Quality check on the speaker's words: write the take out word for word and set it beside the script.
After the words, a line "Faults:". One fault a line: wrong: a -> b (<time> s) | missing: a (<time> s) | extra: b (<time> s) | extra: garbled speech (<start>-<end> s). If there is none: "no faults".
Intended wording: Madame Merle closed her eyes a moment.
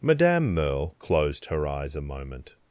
Madame Merle closed her eyes a moment.
Faults:
no faults